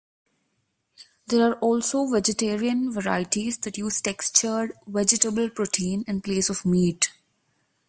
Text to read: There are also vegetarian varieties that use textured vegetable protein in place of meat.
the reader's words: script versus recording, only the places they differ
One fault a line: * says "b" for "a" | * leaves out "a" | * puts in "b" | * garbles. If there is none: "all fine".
all fine